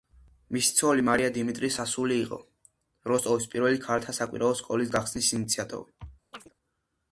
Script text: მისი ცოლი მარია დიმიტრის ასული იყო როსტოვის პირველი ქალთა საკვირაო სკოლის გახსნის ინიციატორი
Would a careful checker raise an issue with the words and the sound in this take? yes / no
yes